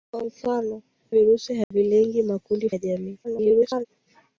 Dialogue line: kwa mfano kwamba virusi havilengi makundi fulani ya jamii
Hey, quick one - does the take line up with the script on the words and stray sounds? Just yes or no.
no